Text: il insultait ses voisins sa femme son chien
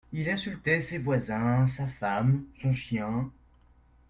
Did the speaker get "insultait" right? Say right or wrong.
right